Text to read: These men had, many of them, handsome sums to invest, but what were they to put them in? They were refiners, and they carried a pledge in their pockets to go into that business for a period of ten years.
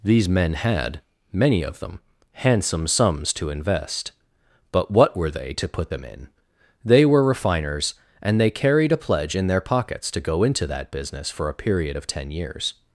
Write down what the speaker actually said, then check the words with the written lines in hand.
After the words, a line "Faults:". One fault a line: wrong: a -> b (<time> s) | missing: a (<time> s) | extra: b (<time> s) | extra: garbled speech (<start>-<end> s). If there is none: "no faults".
These men had, many of them, handsome sums to invest, but what were they to put them in? They were refiners, and they carried a pledge in their pockets to go into that business for a period of ten years.
Faults:
no faults